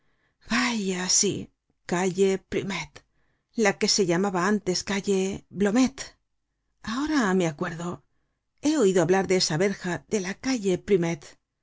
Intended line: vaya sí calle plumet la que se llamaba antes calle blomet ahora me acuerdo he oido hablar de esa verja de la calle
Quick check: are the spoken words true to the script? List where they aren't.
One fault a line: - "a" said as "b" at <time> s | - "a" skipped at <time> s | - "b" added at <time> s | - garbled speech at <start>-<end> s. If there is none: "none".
none